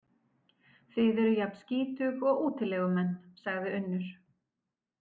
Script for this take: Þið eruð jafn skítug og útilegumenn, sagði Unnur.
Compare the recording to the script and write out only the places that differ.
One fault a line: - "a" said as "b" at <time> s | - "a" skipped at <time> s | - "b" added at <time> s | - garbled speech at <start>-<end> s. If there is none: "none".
none